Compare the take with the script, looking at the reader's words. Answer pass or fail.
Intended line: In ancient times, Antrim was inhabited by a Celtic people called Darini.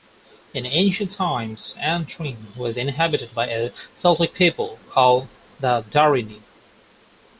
fail